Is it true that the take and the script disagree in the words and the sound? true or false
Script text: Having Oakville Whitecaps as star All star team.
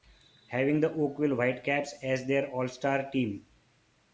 true